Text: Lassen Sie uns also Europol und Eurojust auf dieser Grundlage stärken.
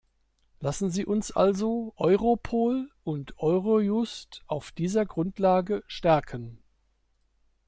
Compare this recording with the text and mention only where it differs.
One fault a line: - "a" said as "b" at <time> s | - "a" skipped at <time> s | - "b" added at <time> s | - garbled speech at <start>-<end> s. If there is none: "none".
none